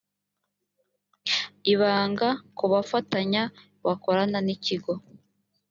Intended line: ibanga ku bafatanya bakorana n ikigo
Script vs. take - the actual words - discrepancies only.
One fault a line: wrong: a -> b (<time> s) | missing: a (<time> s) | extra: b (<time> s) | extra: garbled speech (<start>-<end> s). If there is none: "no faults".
no faults